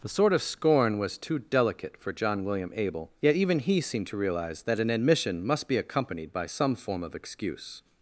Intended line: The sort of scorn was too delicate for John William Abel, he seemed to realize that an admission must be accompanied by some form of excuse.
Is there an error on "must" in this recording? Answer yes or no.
no